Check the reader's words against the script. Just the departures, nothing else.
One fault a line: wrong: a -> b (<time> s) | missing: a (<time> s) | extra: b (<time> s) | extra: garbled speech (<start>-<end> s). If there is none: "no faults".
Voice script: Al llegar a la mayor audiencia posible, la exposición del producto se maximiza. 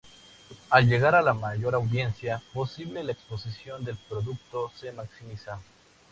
no faults